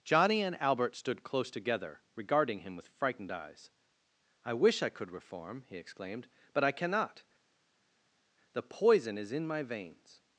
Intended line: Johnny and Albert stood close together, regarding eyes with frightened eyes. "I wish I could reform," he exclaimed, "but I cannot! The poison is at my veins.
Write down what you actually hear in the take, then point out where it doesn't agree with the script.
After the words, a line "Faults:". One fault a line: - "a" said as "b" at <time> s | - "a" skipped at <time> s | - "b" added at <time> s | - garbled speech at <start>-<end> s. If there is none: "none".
Johnny and Albert stood close together, regarding him with frightened eyes. "I wish I could reform," he exclaimed, "but I cannot! The poison is in my veins.
Faults:
- "eyes" said as "him" at 2.6 s
- "at" said as "in" at 9.3 s